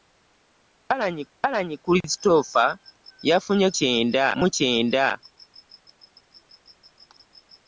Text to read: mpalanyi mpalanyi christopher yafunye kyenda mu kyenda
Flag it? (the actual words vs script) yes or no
no